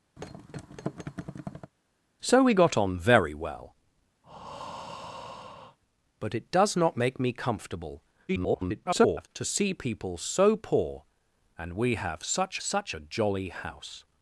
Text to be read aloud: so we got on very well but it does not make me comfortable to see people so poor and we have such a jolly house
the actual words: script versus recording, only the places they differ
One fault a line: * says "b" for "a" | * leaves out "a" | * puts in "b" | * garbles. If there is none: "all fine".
* garbles
* puts in "such"